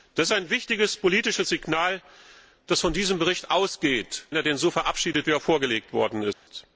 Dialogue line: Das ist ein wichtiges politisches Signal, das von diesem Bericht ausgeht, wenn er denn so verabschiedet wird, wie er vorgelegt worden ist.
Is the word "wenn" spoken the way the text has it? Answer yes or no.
no